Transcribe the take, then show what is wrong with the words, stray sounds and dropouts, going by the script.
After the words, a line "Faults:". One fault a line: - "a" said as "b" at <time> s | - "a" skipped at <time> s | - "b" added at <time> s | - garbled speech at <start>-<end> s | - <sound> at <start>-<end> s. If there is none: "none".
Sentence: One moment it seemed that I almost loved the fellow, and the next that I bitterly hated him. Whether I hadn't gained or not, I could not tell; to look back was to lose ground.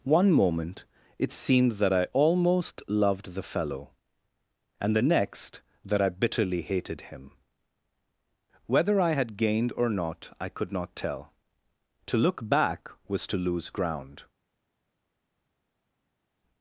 One moment it seemed that I almost loved the fellow, and the next that I bitterly hated him. Whether I had gained or not, I could not tell; to look back was to lose ground.
Faults:
- "hadn't" said as "had" at 9.1 s